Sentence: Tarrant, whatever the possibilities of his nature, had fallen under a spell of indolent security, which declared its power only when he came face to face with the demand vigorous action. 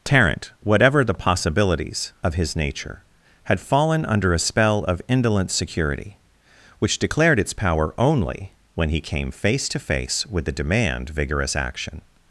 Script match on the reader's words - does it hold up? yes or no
yes